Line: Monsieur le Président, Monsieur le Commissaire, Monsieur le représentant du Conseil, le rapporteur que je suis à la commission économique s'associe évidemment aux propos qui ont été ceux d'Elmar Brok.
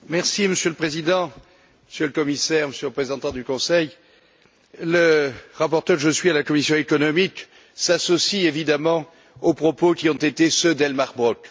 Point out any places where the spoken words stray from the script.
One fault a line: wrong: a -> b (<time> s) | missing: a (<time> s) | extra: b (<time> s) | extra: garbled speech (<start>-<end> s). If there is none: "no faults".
no faults